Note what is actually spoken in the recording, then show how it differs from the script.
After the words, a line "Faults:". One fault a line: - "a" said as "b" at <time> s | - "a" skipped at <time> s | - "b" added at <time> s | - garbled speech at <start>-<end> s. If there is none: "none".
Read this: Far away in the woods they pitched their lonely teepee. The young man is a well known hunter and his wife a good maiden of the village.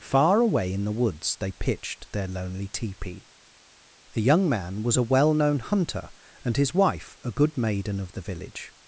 Far away in the woods they pitched their lonely teepee. The young man was a well known hunter and his wife a good maiden of the village.
Faults:
- "is" said as "was" at 4.8 s